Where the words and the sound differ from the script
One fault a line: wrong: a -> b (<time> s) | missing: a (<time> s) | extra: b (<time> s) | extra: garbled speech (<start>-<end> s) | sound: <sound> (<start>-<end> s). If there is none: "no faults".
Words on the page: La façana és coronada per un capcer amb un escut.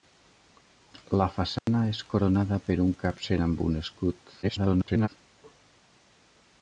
sound: dropout (1.6-1.7 s)
extra: garbled speech (4.4-5.1 s)